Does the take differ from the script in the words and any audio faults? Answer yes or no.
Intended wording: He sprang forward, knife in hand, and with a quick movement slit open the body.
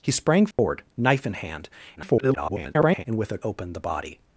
yes